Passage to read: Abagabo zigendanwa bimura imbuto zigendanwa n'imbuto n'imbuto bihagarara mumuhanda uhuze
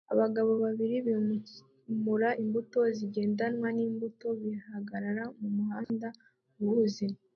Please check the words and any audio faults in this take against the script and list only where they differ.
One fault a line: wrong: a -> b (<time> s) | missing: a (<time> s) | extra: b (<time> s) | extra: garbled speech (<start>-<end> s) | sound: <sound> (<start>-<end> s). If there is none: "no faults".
wrong: zigendanwa -> babiri (0.6 s)
missing: n'imbuto (4.3 s)
sound: dropout (5.8-5.9 s)